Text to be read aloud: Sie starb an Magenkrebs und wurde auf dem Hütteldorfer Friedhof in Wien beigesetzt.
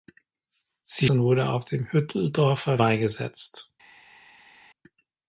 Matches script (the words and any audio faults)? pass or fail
fail